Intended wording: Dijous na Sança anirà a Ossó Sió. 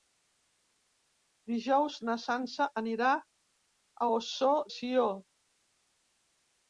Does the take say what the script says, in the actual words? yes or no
yes